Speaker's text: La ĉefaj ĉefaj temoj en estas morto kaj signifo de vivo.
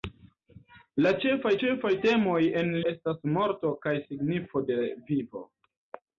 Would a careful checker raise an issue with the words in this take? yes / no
no